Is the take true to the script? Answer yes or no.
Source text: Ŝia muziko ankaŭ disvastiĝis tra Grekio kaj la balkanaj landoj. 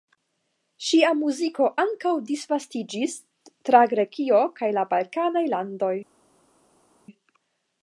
yes